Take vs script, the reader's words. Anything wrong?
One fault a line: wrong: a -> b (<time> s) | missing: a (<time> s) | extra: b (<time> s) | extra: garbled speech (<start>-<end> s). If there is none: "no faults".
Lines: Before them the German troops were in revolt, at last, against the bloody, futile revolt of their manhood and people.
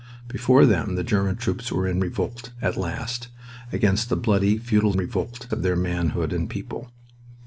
no faults